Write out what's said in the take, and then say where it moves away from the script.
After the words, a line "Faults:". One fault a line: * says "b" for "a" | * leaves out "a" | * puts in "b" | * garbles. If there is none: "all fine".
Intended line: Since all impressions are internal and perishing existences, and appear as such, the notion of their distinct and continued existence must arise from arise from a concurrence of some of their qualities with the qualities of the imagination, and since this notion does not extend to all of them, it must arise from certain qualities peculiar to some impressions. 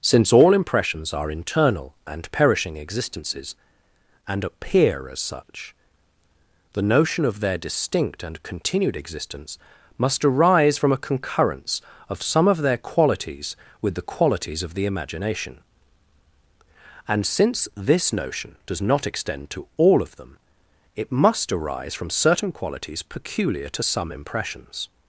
Since all impressions are internal and perishing existences, and appear as such, the notion of their distinct and continued existence must arise from a concurrence of some of their qualities with the qualities of the imagination, and since this notion does not extend to all of them, it must arise from certain qualities peculiar to some impressions.
Faults:
* leaves out "arise from"